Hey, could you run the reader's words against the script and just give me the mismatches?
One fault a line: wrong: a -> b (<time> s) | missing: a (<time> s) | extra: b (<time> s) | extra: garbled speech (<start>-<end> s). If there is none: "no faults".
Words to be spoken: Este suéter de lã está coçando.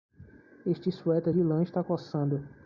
no faults